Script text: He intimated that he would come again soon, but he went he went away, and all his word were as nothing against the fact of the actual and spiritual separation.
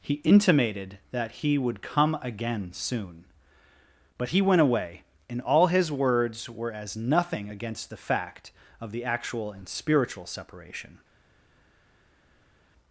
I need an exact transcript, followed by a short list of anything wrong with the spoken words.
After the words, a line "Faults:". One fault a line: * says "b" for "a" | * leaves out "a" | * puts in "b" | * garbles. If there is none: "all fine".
He intimated that he would come again soon, but he went away, and all his words were as nothing against the fact of the actual and spiritual separation.
Faults:
* leaves out "he went"
* says "words" for "word"